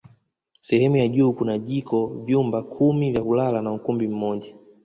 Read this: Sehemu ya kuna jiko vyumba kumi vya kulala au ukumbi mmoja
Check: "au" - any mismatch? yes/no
yes